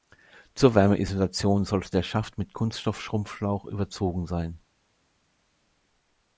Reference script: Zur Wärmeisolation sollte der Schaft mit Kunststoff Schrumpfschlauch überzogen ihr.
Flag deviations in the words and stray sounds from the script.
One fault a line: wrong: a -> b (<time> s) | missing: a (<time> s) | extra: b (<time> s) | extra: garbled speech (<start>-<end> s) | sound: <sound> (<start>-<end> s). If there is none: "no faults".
wrong: ihr -> sein (4.2 s)